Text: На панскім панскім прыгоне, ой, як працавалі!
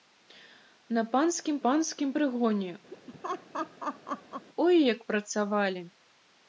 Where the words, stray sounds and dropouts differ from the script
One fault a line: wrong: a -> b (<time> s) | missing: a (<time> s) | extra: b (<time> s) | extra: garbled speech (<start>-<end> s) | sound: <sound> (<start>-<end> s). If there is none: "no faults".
sound: laugh (2.9-4.5 s)